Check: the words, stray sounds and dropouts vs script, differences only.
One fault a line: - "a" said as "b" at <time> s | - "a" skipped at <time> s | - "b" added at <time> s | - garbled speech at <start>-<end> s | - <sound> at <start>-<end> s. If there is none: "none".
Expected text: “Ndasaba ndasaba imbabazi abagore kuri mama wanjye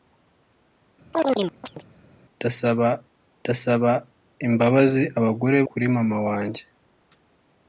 - chirp at 1.1-1.8 s